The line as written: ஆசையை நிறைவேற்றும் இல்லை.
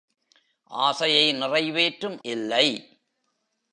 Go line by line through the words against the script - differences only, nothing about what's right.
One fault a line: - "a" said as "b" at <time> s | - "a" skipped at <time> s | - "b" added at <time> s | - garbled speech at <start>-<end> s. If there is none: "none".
none